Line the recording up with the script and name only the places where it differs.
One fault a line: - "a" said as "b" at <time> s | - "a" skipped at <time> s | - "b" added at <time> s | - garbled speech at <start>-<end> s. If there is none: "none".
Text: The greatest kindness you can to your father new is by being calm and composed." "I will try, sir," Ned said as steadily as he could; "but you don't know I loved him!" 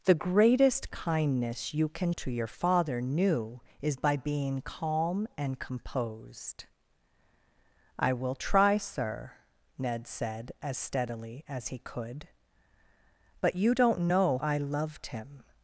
none